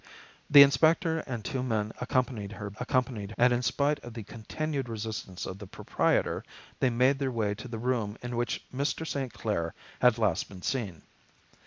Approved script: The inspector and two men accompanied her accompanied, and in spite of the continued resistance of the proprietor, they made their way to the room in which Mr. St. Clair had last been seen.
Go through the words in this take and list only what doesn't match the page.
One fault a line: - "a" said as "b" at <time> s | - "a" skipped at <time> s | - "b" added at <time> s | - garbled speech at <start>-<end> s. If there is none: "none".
none